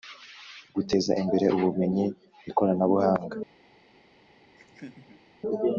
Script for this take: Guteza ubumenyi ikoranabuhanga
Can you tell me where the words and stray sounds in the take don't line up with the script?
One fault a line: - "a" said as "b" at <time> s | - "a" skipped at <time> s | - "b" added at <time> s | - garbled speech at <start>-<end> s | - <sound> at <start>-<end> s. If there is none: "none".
- "imbere" added at 1.2 s
- laugh at 4.5-5.3 s